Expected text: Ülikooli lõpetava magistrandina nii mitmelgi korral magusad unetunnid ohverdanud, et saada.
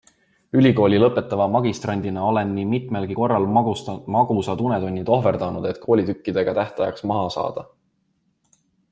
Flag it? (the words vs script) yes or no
yes